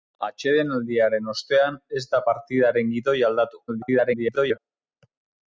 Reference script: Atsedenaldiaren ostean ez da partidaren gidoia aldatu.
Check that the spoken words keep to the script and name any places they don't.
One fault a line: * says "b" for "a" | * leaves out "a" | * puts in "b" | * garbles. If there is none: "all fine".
* garbles